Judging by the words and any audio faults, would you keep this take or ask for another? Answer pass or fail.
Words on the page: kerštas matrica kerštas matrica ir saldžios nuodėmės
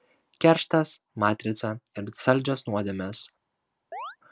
fail